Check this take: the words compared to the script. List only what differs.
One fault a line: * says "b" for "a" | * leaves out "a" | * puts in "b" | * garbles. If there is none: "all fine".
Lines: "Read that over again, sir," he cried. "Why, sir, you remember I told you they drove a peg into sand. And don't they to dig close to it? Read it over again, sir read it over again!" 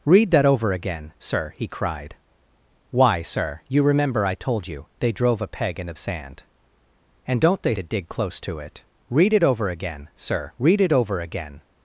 all fine